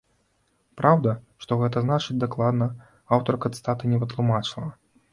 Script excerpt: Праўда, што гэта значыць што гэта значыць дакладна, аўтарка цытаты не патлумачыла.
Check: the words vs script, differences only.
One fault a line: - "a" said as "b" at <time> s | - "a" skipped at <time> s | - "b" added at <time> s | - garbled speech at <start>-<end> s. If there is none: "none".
- "што гэта значыць" skipped at 2.2 s